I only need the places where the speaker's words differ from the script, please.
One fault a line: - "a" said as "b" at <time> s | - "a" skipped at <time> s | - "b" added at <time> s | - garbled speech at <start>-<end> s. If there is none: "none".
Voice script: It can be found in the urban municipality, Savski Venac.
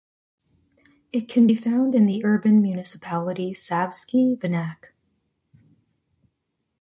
none